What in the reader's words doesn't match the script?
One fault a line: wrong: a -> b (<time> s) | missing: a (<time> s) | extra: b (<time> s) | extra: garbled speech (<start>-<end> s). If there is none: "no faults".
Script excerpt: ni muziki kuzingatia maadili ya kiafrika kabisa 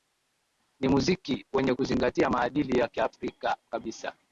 extra: wenye (1.5 s)